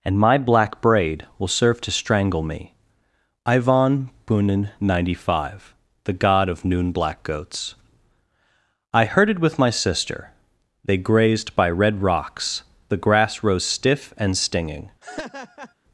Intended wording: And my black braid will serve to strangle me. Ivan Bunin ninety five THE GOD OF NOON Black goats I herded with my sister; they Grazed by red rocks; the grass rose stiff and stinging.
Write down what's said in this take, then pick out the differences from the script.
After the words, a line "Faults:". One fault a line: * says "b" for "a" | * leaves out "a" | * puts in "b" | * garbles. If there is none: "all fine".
And my black braid will serve to strangle me. Ivan Bunin ninety five THE GOD OF NOON Black goats I herded with my sister; they Grazed by red rocks; the grass rose stiff and stinging.
Faults:
all fine